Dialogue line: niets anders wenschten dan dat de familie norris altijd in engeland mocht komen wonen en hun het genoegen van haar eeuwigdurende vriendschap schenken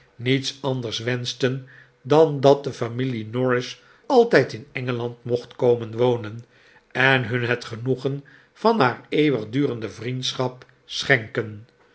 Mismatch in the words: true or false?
false